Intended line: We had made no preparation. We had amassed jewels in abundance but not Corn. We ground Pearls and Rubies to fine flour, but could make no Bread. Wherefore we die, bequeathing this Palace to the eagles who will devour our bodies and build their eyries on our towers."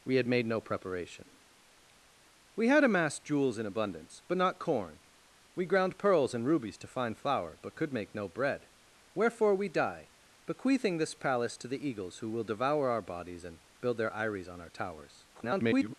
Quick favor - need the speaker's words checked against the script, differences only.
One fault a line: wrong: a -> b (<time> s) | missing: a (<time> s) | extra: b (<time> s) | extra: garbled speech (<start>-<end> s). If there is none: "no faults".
extra: garbled speech (15.3-15.9 s)